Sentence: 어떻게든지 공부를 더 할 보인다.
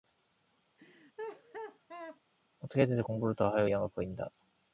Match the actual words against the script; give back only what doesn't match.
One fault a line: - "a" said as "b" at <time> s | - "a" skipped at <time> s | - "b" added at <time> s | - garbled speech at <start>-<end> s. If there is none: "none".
- "의향을" added at 3.6 s